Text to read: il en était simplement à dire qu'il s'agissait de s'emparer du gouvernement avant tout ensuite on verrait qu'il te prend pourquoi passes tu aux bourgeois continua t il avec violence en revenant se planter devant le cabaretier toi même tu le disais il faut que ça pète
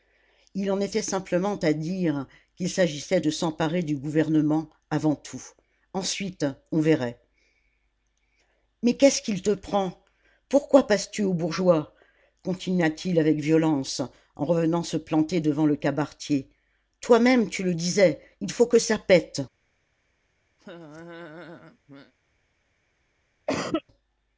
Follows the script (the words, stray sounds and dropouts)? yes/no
no